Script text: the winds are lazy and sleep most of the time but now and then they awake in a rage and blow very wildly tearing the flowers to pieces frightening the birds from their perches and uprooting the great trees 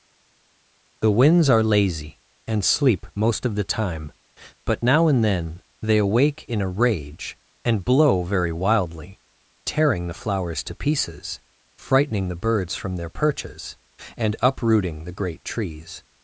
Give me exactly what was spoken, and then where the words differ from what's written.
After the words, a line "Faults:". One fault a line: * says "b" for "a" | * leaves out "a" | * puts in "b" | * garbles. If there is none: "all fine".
the winds are lazy and sleep most of the time but now and then they awake in a rage and blow very wildly tearing the flowers to pieces frightening the birds from their perches and uprooting the great trees
Faults:
all fine